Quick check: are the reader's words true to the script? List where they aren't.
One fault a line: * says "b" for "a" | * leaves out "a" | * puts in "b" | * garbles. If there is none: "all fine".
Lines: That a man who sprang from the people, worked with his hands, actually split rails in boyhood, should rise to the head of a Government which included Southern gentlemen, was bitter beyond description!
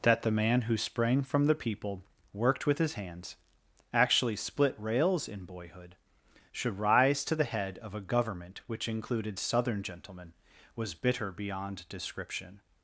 * says "the" for "a"